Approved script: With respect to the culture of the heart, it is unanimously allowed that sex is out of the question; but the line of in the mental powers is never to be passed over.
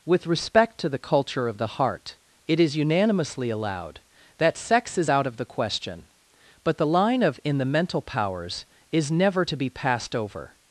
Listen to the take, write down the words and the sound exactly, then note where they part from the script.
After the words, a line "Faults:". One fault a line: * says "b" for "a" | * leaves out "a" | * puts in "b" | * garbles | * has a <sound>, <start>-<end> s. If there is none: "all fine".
With respect to the culture of the heart, it is unanimously allowed that sex is out of the question; but the line of in the mental powers is never to be passed over.
Faults:
all fine